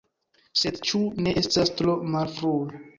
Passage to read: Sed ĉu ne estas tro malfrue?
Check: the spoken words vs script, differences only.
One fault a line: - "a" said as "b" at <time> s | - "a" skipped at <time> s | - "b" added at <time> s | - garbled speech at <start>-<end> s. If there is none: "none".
none